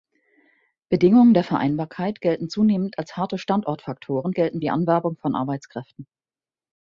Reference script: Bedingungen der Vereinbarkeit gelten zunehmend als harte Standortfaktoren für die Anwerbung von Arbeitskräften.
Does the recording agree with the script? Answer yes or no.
no